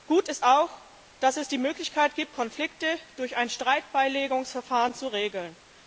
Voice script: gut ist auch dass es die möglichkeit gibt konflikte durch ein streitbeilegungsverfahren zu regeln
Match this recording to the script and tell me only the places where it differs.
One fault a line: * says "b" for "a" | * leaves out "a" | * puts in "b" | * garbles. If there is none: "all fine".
all fine